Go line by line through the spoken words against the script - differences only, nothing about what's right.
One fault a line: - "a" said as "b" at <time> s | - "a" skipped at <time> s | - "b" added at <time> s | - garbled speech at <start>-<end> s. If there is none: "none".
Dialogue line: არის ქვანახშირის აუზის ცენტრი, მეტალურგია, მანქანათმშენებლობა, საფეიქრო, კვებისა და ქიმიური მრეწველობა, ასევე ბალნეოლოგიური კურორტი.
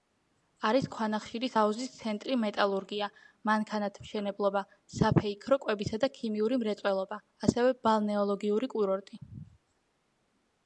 none